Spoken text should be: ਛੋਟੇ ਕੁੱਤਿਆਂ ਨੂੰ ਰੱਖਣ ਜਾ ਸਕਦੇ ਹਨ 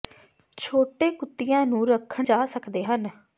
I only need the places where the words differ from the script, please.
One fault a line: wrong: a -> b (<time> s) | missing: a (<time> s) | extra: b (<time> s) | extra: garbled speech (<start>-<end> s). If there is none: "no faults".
no faults